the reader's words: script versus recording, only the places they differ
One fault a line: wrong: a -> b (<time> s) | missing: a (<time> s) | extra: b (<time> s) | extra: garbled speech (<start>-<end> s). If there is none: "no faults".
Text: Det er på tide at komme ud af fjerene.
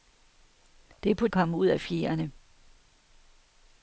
missing: tide at (1.3 s)